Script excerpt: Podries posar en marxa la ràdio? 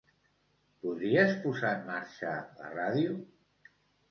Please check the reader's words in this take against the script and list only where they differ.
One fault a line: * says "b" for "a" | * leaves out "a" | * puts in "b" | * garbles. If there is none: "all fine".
all fine